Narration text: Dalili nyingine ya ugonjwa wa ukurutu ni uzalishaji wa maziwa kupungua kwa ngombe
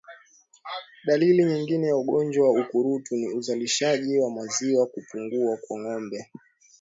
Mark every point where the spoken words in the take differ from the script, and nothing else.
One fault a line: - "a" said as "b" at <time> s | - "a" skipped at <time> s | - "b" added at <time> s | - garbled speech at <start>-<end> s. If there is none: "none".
none